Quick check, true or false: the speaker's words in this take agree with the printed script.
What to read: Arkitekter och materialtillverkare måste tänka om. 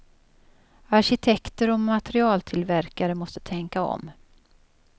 true